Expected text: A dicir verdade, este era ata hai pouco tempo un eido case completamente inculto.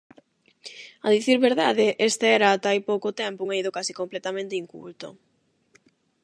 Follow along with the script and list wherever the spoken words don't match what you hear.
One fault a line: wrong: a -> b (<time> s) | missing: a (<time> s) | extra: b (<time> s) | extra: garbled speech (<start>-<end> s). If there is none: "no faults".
no faults